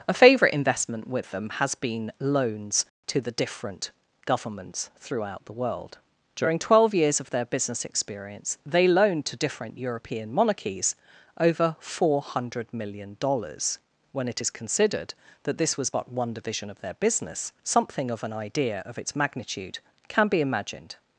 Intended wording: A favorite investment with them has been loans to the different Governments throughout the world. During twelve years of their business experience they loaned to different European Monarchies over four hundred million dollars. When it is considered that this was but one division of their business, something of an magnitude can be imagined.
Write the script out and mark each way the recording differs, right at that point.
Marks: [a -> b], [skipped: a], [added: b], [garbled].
A favorite investment with them has been loans to the different Governments throughout the world. During twelve years of their business experience they loaned to different European Monarchies over four hundred million dollars. When it is considered that this was but one division of their business, something of an [added: idea of its] magnitude can be imagined.